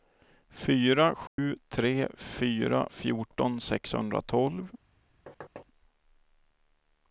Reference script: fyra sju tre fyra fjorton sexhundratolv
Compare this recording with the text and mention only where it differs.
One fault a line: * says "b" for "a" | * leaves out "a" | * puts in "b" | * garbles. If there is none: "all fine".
all fine